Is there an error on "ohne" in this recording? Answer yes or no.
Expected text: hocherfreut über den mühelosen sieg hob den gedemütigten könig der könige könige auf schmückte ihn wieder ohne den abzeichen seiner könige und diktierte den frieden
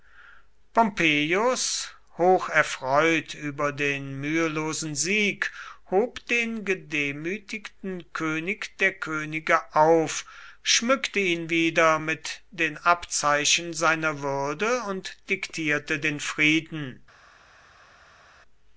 yes